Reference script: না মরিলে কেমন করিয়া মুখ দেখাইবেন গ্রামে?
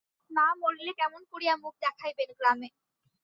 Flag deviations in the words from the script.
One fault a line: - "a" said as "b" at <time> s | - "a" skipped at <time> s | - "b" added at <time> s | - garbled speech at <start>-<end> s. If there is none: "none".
none